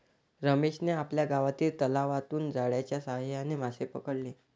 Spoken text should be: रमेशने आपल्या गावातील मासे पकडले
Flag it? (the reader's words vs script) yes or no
yes